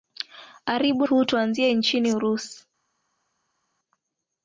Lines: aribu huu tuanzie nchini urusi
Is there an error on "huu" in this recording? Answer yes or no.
no